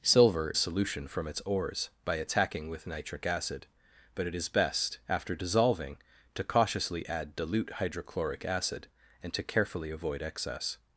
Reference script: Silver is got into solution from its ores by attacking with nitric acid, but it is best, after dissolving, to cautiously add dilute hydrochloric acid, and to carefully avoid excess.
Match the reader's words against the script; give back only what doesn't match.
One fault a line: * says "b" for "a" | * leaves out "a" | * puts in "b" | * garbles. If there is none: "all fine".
* leaves out "is got into"